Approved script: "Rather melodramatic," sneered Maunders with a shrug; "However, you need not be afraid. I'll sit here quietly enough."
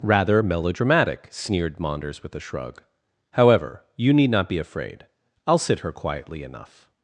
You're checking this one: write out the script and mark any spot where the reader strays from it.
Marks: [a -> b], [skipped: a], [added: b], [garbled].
"Rather melodramatic," sneered Maunders with a shrug; "However, you need not be afraid. I'll sit [here -> her] quietly enough."